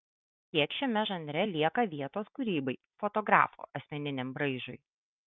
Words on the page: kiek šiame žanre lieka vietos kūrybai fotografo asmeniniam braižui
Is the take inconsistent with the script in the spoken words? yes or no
no